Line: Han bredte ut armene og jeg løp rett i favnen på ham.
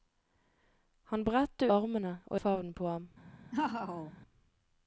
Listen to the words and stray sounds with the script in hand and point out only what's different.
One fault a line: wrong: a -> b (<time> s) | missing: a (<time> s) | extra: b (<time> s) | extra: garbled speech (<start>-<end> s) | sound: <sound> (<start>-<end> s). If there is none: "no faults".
missing: ut (1.6 s)
missing: jeg løp rett (2.4 s)
sound: laugh (3.5-4.1 s)